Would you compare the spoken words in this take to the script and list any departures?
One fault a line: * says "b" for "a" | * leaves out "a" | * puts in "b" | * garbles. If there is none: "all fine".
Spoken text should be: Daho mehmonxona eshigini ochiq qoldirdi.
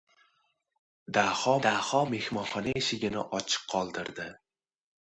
* puts in "daho"